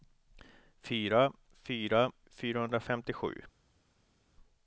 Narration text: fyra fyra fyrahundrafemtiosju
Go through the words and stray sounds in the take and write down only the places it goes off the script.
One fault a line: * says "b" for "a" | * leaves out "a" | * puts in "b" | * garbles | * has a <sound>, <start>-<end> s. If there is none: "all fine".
all fine